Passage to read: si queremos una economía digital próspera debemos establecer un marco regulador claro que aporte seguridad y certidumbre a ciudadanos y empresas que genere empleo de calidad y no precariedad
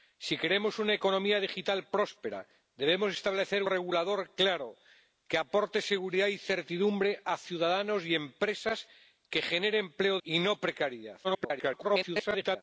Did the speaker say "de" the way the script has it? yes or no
no